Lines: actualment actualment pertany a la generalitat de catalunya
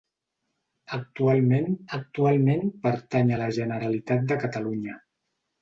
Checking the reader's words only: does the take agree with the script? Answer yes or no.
yes